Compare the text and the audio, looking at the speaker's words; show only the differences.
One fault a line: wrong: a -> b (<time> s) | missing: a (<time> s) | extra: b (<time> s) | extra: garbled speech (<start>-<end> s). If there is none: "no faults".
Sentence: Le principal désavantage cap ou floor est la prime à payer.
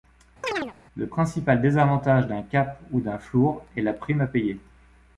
extra: d'un (2.3 s)
extra: d'un (3.0 s)